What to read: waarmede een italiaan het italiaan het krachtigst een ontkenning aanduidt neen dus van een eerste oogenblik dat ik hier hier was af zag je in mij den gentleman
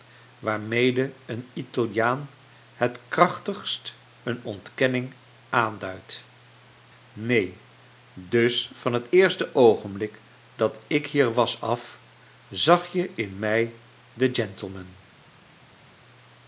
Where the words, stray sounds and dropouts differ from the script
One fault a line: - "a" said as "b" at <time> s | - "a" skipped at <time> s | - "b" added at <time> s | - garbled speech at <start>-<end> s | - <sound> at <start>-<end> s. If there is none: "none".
- "italiaan het" skipped at 3.0 s
- "een" said as "het" at 8.9 s
- "hier" skipped at 11.3 s